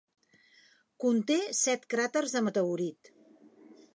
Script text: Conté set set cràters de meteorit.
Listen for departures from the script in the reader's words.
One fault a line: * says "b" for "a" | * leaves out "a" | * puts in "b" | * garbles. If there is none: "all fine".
* leaves out "set"